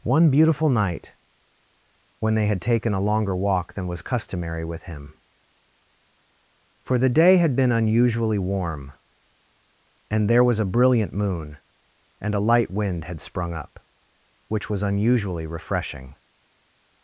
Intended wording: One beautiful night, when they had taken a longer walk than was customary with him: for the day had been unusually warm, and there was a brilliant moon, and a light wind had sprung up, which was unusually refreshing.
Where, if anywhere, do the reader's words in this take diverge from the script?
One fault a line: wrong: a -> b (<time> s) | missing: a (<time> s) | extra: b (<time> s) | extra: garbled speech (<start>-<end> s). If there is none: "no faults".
no faults